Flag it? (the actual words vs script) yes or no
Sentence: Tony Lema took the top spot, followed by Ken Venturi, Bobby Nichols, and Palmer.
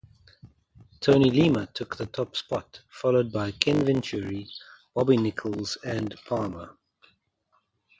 no